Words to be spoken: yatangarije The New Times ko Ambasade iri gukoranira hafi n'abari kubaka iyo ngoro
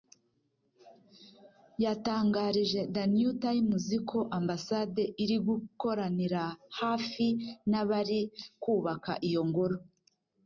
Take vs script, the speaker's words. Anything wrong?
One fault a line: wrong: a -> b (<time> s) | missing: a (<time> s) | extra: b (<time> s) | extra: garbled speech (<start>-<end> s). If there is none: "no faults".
no faults